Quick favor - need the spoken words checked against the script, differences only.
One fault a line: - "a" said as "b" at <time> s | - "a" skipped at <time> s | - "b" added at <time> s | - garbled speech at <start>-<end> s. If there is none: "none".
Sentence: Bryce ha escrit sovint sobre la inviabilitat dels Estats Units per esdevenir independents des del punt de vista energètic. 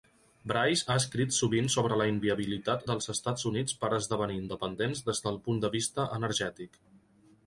none